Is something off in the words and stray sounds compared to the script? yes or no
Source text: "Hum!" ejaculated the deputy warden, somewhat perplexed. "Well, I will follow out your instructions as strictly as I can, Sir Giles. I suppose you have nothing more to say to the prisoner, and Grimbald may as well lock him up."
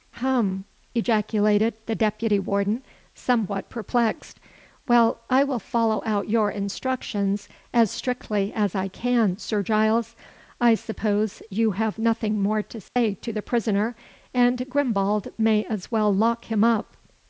yes